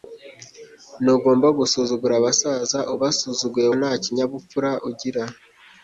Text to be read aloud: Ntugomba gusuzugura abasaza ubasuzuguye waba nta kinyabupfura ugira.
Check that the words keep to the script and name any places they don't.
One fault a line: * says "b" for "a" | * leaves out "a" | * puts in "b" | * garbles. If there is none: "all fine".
* leaves out "waba"